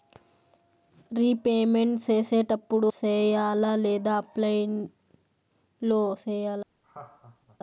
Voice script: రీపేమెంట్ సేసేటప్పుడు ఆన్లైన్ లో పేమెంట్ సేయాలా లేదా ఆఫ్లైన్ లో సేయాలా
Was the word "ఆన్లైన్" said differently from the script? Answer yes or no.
yes